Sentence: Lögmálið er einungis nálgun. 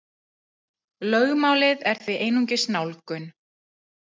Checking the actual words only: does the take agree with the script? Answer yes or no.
no